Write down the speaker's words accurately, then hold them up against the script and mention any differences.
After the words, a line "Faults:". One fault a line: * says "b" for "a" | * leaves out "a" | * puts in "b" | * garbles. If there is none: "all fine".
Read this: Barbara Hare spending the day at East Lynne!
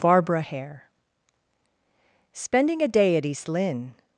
Barbara Hare spending a day at East Lynne!
Faults:
* says "a" for "the"